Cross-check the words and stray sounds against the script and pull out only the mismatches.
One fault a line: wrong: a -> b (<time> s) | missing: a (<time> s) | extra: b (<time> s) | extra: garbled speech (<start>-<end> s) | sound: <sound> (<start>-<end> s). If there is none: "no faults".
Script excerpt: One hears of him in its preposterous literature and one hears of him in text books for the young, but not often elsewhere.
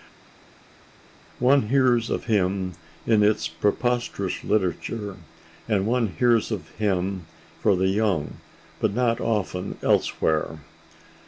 missing: in text books (7.3 s)